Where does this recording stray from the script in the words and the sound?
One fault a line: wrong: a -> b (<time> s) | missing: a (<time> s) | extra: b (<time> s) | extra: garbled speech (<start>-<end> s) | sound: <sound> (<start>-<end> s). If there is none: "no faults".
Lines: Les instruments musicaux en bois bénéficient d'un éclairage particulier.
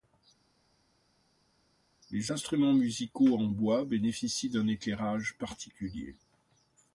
no faults